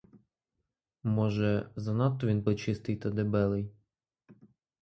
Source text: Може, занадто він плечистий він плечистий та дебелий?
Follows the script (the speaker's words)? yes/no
no